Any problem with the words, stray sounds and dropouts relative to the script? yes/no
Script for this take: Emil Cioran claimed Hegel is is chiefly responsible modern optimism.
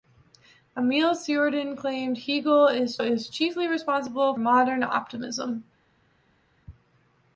no